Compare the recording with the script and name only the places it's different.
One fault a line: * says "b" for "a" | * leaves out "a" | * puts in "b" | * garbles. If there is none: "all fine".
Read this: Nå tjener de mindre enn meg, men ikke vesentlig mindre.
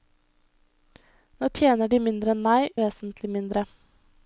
* leaves out "men ikke"